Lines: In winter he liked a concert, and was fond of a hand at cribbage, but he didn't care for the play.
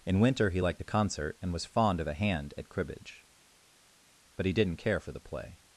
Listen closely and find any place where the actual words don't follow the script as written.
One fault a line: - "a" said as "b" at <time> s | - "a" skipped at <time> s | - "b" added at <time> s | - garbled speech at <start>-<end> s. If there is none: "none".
none